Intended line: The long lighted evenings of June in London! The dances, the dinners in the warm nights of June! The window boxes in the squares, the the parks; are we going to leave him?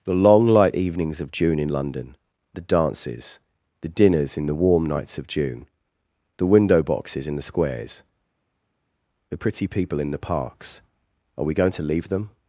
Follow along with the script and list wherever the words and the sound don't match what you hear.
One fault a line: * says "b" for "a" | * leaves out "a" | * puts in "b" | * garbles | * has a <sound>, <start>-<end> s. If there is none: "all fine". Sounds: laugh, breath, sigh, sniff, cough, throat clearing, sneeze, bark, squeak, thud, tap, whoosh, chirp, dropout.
* says "light" for "lighted"
* puts in "pretty people in"
* says "them" for "him"